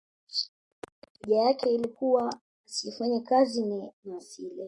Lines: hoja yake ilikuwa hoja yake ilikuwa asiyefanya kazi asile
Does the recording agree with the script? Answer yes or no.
no